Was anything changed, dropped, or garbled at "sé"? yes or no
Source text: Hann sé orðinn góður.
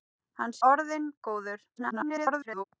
yes